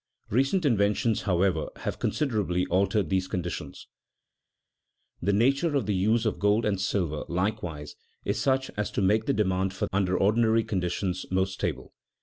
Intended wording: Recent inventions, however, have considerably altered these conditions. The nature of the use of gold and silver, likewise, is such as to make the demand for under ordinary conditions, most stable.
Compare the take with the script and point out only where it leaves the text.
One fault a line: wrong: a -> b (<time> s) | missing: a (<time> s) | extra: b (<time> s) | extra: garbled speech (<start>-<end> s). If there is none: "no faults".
no faults